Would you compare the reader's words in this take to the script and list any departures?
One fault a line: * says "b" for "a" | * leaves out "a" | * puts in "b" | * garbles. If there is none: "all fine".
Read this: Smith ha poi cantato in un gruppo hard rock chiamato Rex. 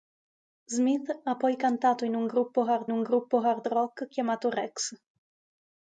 * puts in "un gruppo hard"